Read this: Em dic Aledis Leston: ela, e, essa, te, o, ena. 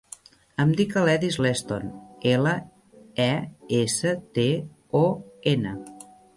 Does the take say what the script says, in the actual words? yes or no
yes